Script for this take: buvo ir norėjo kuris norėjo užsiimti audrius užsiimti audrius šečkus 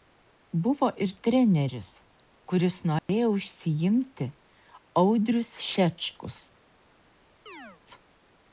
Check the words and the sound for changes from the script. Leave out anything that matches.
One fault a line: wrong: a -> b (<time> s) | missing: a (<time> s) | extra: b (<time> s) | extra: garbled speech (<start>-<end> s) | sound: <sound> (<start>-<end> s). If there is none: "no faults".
wrong: norėjo -> treneris (1.3 s)
sound: dropout (3.0-3.1 s)
missing: užsiimti audrius (5.5 s)
sound: chirp (7.5-7.8 s)